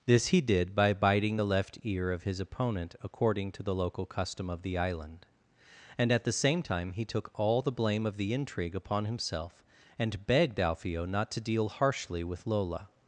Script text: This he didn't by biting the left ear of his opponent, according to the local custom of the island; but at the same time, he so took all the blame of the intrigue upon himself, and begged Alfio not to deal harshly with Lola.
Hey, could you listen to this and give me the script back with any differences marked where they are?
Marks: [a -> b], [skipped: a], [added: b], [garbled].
This he [didn't -> did] by biting the left ear of his opponent, according to the local custom of the island; [but -> and] at the same time, he [skipped: so] took all the blame of the intrigue upon himself, and begged Alfio not to deal harshly with Lola.